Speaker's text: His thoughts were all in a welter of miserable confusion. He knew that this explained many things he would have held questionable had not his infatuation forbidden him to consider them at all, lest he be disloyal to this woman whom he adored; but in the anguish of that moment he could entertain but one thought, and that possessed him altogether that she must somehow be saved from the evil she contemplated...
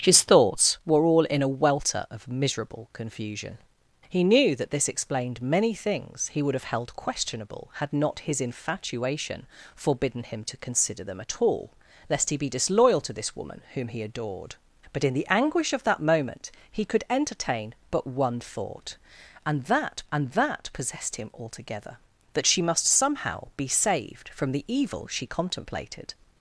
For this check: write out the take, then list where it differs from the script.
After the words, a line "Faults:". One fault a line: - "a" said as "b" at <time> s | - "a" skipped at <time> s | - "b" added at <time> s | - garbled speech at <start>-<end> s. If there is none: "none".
His thoughts were all in a welter of miserable confusion. He knew that this explained many things he would have held questionable had not his infatuation forbidden him to consider them at all, lest he be disloyal to this woman whom he adored; but in the anguish of that moment he could entertain but one thought, and that and that possessed him altogether that she must somehow be saved from the evil she contemplated...
Faults:
- "and that" added at 20.1 s